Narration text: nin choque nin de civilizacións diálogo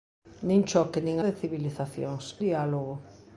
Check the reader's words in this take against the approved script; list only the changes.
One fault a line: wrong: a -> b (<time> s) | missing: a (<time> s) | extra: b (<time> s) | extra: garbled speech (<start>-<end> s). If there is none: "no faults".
no faults